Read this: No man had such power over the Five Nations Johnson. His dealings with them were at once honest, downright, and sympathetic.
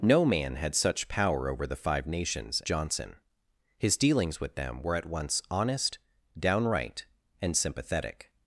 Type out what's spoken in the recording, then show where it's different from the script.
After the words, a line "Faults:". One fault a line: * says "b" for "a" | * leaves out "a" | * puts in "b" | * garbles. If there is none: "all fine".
No man had such power over the Five Nations Johnson. His dealings with them were at once honest, downright, and sympathetic.
Faults:
all fine